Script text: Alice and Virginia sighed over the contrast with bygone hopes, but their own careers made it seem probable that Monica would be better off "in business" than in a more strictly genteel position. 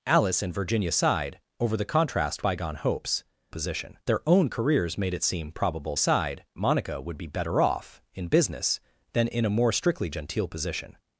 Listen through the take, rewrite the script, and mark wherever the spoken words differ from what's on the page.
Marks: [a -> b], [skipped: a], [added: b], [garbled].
Alice and Virginia sighed over the contrast [skipped: with] bygone hopes, [but -> position] their own careers made it seem probable [that -> sighed] Monica would be better off "in business" than in a more strictly genteel position.